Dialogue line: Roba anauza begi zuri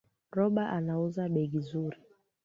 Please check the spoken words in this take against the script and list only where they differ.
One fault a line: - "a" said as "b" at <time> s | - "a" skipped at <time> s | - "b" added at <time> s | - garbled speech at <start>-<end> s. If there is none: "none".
none